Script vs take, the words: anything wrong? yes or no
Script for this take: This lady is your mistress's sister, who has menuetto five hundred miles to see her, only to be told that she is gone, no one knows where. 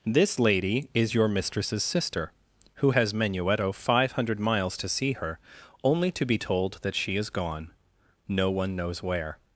no